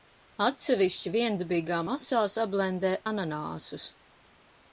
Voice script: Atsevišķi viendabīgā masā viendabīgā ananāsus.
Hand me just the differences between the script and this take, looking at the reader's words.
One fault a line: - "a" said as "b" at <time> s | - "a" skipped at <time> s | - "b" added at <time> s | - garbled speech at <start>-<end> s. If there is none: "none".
- "viendabīgā" said as "sablendē" at 2.4 s